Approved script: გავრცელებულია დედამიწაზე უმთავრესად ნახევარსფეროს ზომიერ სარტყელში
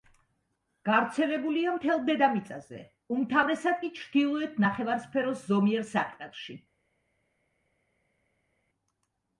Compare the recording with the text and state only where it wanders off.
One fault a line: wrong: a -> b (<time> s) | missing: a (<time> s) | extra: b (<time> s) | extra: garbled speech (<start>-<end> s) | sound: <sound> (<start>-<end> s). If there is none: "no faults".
extra: მთელ (1.7 s)
extra: კი ჩრდილოეთ (3.8 s)